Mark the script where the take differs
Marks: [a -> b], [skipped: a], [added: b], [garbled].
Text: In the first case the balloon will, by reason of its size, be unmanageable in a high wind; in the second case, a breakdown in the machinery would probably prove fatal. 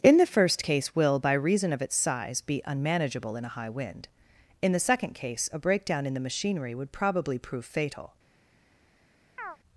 In the first case [skipped: the balloon] will, by reason of its size, be unmanageable in a high wind; in the second case, a breakdown in the machinery would probably prove fatal.